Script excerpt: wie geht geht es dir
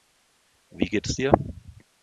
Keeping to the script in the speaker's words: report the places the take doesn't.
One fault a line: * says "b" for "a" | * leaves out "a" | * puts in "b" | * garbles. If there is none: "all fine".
* leaves out "geht"